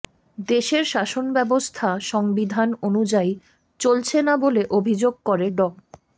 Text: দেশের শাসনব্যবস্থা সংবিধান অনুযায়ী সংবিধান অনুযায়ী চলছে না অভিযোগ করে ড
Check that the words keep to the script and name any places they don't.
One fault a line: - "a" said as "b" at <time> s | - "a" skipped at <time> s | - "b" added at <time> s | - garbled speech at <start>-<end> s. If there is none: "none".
- "সংবিধান অনুযায়ী" skipped at 3.3 s
- "বলে" added at 4.4 s